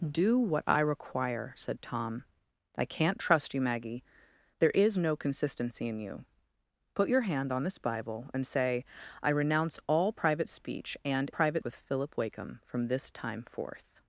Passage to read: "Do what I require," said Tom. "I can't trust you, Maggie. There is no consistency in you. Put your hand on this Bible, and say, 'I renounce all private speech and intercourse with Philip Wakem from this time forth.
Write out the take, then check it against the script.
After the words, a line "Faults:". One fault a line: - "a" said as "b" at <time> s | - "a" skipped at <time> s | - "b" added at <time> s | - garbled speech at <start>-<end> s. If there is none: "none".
"Do what I require," said Tom. "I can't trust you, Maggie. There is no consistency in you. Put your hand on this Bible, and say, 'I renounce all private speech and private with Philip Wakem from this time forth.
Faults:
- "intercourse" said as "private" at 11.3 s